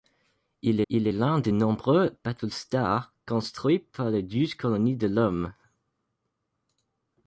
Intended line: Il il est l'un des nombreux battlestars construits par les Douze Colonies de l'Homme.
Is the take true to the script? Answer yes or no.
yes